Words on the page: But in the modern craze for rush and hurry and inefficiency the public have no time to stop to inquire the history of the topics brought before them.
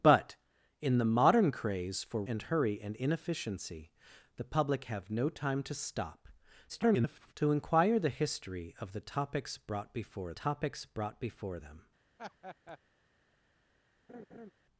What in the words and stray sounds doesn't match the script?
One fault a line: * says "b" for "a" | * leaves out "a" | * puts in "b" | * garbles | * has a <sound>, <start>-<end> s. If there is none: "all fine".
* leaves out "rush"
* garbles
* puts in "topics brought before"
* has a laugh, 12.2-12.8 s
* has a laugh, 14.1-14.5 s